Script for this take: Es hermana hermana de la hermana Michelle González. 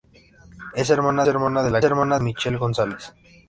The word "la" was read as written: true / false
true